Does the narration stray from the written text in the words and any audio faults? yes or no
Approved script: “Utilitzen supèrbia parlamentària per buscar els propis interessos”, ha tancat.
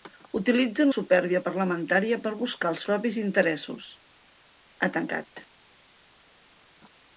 no